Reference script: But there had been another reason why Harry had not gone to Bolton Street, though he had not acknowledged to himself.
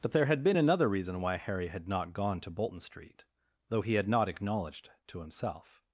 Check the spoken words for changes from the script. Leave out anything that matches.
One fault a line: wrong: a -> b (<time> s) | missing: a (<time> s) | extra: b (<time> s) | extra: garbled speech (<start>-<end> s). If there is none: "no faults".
no faults